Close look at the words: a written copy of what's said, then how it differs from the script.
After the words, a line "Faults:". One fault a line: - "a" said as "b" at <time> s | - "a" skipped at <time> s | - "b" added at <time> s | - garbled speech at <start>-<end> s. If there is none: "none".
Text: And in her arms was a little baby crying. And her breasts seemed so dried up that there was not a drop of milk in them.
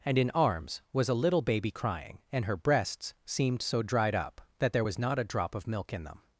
And in arms was a little baby crying. And her breasts seemed so dried up that there was not a drop of milk in them.
Faults:
- "her" skipped at 0.3 s